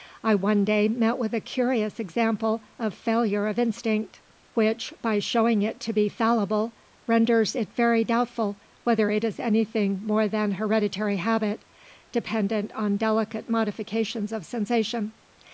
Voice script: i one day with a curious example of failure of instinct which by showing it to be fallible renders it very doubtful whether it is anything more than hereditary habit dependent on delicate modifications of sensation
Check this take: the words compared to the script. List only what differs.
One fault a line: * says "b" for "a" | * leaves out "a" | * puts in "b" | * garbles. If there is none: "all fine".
* puts in "met"